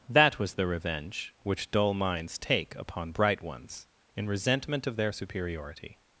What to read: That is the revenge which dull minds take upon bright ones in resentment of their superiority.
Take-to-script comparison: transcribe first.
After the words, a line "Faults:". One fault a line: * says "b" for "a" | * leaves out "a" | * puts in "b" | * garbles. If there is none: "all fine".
That was the revenge which dull minds take upon bright ones in resentment of their superiority.
Faults:
* says "was" for "is"